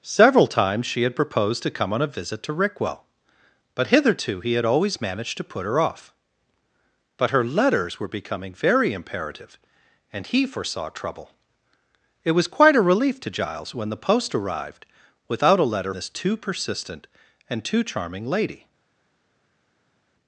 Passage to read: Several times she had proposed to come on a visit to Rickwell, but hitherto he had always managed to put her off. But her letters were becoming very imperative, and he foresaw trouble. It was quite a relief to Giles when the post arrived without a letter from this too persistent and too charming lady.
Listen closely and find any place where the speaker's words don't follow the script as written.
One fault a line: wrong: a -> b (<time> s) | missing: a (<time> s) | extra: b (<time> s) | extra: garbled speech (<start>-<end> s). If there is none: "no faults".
missing: from (15.9 s)